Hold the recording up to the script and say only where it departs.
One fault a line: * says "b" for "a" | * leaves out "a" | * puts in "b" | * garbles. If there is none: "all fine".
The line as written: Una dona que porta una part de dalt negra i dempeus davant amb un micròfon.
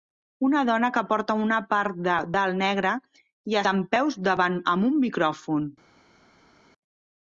all fine